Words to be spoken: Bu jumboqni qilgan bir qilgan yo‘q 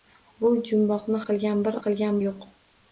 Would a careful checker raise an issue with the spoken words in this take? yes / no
no